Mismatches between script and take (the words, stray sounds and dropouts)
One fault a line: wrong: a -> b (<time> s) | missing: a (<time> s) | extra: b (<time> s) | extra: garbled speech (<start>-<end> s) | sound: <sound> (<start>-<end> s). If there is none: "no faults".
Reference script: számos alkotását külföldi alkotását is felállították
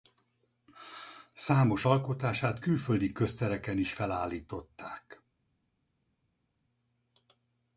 wrong: alkotását -> köztereken (3.1 s)